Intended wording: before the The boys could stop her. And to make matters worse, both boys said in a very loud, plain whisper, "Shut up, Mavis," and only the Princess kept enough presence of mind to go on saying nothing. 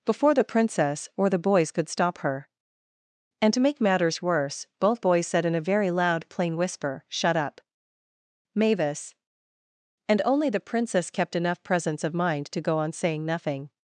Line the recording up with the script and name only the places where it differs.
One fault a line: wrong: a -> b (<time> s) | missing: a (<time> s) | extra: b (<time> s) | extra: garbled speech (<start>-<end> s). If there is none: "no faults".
extra: Princess or (0.4 s)